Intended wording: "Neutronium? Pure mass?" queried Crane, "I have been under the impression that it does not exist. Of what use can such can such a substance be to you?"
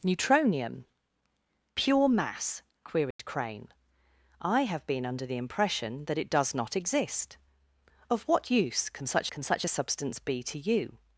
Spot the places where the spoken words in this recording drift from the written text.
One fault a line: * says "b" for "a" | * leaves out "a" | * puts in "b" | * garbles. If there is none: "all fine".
all fine